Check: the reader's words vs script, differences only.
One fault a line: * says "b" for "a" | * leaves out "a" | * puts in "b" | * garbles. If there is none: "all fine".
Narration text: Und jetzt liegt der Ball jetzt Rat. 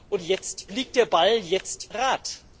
all fine